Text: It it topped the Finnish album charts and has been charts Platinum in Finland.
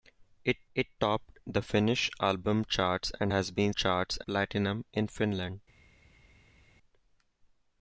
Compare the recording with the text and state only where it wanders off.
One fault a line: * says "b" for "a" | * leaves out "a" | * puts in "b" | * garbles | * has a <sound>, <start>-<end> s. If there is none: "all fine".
all fine